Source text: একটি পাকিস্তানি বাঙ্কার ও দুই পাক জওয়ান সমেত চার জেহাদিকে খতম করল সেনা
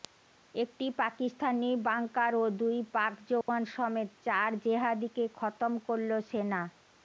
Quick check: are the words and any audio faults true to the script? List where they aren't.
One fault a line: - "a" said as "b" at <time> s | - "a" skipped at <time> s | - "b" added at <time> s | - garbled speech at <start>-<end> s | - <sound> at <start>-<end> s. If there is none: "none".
- dropout at 3.4-3.5 s